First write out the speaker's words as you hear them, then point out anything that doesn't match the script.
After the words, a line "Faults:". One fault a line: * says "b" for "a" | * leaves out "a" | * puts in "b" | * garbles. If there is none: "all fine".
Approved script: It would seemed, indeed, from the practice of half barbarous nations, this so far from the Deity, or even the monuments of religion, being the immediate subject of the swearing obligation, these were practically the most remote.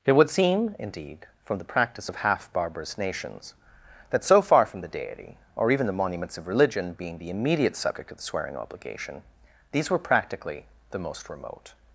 It would seem, indeed, from the practice of half barbarous nations, that so far from the Deity, or even the monuments of religion, being the immediate subject of the swearing obligation, these were practically the most remote.
Faults:
* says "seem" for "seemed"
* says "that" for "this"